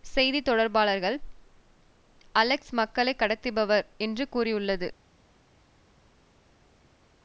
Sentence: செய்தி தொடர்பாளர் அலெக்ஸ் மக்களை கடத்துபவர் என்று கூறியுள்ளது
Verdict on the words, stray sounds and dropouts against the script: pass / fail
pass